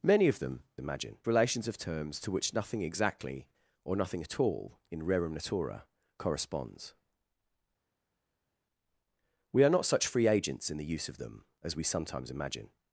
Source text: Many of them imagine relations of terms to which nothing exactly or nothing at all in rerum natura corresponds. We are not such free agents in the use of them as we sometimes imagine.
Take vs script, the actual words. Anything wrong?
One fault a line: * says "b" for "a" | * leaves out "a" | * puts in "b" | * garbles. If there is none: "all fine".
all fine